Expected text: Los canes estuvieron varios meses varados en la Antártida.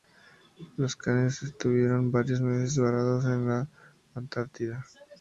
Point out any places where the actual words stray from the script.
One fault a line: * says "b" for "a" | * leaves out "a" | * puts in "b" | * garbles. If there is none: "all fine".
all fine